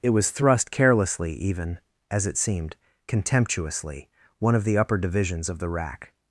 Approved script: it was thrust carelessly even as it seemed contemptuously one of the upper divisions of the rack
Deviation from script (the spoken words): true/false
false